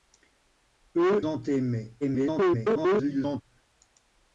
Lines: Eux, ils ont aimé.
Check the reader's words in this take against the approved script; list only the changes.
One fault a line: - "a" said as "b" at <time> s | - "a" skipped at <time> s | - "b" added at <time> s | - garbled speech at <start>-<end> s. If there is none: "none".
- "ils" skipped at 1.2 s
- garbled speech at 2.0-3.4 s